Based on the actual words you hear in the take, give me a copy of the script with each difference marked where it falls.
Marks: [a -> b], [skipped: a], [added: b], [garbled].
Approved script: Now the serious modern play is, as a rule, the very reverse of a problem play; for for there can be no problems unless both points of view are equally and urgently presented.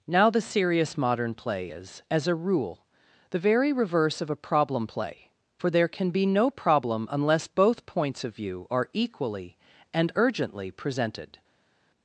Now the serious modern play is, as a rule, the very reverse of a problem play; for [skipped: for] there can be no [problems -> problem] unless both points of view are equally and urgently presented.